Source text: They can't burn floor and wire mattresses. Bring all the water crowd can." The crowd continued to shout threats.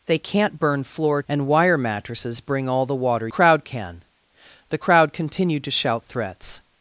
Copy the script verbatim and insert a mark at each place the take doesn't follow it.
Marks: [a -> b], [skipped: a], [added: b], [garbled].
They can't burn floor and wire mattresses. Bring all the water crowd can." The crowd continued to shout threats.